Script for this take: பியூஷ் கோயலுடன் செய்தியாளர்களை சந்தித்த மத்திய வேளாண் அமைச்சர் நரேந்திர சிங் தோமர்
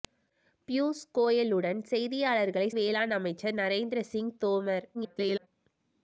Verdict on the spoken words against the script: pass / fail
fail